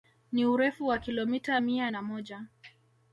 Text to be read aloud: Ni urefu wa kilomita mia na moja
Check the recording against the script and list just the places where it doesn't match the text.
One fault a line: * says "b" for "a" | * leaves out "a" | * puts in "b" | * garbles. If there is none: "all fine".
all fine